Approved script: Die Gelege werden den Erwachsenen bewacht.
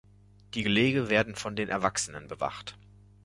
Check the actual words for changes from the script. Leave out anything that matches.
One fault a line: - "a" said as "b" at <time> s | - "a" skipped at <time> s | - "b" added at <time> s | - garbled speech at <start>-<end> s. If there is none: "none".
- "von" added at 1.4 s